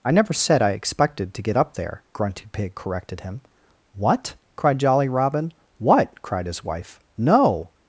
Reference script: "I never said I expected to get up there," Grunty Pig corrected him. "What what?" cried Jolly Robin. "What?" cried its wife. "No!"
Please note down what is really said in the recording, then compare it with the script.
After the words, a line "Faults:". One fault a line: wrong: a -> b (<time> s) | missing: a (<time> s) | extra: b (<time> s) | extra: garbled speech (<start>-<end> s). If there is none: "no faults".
"I never said I expected to get up there," Grunty Pig corrected him. "What?" cried Jolly Robin. "What?" cried his wife. "No!"
Faults:
missing: what (4.4 s)
wrong: its -> his (6.5 s)